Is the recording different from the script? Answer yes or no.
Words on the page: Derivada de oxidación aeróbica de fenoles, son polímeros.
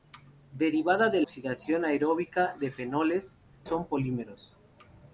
no